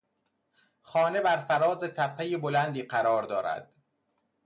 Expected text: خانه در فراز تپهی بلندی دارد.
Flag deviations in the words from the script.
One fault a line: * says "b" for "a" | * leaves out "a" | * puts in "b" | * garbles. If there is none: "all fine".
* says "بر" for "در"
* puts in "قرار"